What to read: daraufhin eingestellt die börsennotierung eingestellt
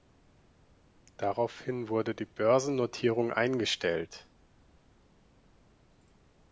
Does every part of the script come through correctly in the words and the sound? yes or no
no